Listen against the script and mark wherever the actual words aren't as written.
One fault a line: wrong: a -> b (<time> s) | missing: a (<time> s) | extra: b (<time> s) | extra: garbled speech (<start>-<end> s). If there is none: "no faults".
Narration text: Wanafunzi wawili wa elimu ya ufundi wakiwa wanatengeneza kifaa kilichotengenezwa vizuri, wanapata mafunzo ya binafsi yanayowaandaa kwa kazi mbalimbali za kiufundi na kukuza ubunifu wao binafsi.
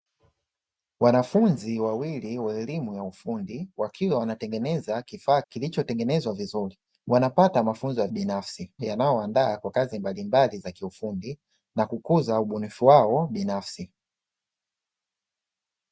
no faults